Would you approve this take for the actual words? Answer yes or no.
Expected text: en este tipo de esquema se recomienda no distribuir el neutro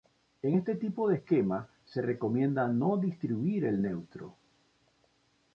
yes